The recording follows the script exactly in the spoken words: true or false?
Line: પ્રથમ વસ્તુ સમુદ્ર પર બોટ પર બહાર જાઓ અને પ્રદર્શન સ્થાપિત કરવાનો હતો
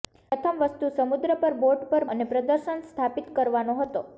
false